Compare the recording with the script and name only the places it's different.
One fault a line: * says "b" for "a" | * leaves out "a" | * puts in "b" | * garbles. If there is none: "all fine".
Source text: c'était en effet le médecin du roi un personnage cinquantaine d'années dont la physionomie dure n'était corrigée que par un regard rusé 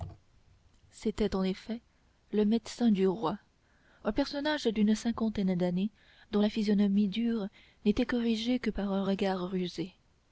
* puts in "d'une"